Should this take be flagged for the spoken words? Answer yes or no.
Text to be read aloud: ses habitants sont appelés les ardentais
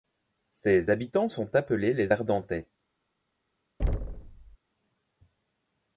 no